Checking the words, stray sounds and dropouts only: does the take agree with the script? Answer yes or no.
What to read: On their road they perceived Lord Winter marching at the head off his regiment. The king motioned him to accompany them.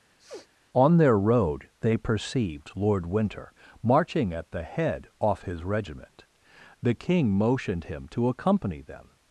no